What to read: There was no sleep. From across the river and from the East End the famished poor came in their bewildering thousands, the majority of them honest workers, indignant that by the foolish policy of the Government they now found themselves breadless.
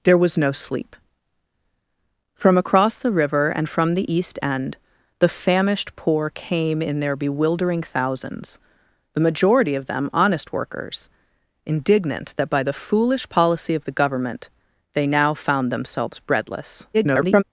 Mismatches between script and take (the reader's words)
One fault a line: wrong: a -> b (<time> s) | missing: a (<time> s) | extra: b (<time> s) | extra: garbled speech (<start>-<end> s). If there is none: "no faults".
extra: garbled speech (16.9-17.4 s)